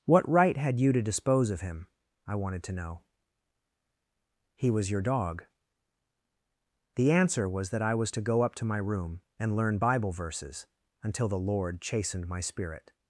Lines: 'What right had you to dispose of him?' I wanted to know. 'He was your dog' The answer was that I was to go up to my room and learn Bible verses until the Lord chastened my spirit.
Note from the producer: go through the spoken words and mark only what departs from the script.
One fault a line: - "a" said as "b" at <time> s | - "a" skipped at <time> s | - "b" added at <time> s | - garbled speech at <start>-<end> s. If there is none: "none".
none